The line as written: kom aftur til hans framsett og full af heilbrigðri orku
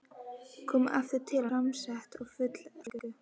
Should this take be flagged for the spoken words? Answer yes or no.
yes